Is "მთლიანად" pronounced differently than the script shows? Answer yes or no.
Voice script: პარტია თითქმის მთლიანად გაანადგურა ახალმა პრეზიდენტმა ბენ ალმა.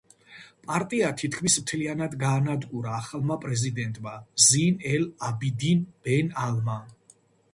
no